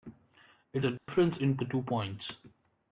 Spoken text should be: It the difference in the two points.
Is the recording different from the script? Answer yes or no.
no